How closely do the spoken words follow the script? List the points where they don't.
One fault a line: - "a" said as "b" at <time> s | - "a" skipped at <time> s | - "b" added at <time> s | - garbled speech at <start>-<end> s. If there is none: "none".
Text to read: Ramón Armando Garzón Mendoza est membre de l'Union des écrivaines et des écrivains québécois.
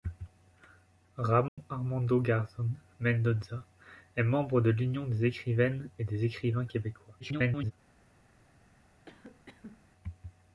- garbled speech at 7.2-7.7 s